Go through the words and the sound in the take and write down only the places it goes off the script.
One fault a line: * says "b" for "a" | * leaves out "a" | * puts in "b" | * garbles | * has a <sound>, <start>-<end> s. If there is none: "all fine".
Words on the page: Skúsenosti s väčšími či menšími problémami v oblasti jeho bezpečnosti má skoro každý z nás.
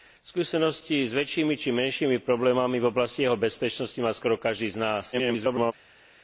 * garbles